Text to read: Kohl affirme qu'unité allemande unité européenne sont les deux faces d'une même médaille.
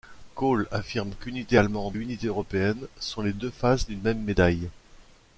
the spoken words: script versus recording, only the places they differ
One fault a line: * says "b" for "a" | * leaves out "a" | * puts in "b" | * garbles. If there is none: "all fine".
all fine